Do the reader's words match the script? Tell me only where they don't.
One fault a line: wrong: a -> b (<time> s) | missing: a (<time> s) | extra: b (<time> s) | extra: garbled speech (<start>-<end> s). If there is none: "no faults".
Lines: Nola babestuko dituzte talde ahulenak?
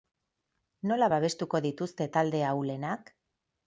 no faults